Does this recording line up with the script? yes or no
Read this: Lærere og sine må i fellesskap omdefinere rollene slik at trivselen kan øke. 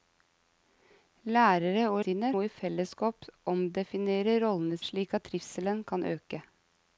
yes